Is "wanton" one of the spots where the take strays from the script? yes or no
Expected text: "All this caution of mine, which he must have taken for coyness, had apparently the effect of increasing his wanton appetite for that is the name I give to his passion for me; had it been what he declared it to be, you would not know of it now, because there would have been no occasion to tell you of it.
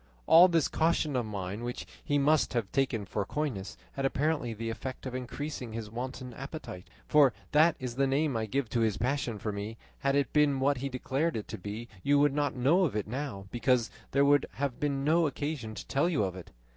no